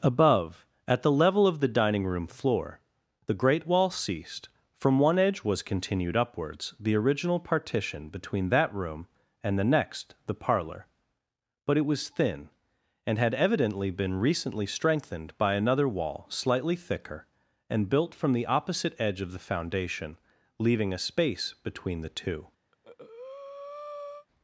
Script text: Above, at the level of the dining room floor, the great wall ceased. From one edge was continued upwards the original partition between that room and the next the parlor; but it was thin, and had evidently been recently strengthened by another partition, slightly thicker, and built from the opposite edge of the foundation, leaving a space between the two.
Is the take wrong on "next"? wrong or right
right